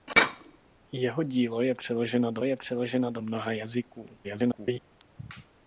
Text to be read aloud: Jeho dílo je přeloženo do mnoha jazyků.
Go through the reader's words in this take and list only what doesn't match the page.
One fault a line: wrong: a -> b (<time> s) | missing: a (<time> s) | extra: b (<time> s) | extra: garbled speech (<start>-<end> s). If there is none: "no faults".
extra: je přeloženo do (2.4 s)
extra: garbled speech (4.2-4.8 s)